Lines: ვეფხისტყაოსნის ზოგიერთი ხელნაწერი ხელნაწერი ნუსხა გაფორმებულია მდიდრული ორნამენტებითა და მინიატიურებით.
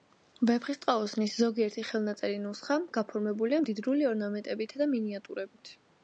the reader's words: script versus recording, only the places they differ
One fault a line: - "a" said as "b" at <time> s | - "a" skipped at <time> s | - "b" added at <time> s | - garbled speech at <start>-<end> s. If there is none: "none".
- "ხელნაწერი" skipped at 2.4 s